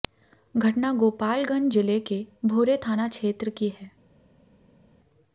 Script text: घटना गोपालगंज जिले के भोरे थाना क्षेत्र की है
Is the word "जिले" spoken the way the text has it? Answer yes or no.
yes